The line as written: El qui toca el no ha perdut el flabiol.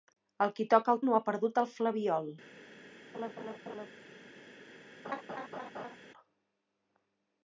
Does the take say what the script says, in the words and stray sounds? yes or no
no